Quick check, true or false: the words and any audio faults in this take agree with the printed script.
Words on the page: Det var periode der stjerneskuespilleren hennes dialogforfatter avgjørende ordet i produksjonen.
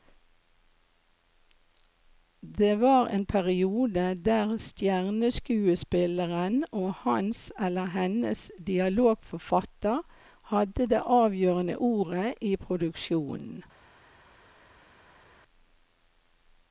false